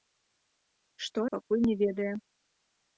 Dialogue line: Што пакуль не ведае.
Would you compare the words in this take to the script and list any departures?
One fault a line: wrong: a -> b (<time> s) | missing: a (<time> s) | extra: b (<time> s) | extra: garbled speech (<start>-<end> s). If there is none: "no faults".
no faults